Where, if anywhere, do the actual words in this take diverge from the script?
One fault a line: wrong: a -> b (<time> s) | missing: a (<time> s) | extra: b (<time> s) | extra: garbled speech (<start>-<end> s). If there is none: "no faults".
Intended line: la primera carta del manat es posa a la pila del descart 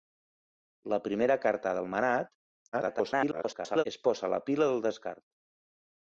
extra: garbled speech (2.7-3.8 s)